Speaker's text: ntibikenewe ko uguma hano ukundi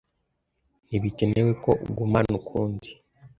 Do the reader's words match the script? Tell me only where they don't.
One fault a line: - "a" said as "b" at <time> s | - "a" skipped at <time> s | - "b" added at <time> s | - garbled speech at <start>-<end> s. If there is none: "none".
none